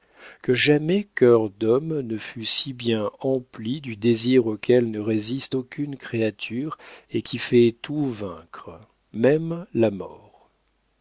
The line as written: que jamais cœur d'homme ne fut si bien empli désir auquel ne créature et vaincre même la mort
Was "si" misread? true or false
false